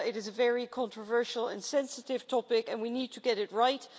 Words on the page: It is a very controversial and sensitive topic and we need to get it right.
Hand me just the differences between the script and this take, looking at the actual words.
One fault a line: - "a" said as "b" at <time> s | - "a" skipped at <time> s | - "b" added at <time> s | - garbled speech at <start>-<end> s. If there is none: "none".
none